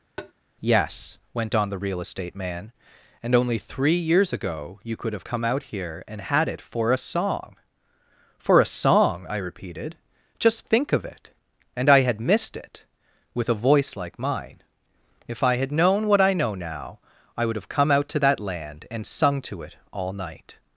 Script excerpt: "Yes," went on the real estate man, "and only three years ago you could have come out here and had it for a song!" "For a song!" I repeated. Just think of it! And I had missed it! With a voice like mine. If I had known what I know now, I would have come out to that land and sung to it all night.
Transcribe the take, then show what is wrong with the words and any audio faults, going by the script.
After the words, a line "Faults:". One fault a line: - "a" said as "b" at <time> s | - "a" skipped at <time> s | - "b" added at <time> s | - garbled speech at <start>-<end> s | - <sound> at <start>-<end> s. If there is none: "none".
"Yes," went on the real estate man, "and only three years ago you could have come out here and had it for a song!" "For a song!" I repeated. Just think of it! And I had missed it! With a voice like mine. If I had known what I know now, I would have come out to that land and sung to it all night.
Faults:
- tap at 0.2-0.3 s